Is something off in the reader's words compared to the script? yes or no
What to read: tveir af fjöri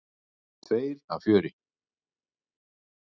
no